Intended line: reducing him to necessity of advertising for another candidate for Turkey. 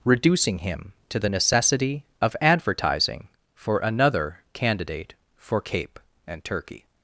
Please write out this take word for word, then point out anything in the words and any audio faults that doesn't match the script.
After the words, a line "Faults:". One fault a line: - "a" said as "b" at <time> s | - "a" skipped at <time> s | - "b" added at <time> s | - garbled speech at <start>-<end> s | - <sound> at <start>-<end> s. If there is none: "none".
reducing him to the necessity of advertising for another candidate for Cape and turkey.
Faults:
- "the" added at 1.2 s
- "Cape and" added at 5.6 s